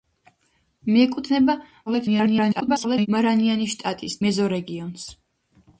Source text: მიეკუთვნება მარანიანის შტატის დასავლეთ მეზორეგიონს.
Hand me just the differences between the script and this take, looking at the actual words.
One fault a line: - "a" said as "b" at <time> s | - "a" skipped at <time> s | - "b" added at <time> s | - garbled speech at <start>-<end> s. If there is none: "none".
- garbled speech at 1.9-3.1 s
- "დასავლეთ" skipped at 4.2 s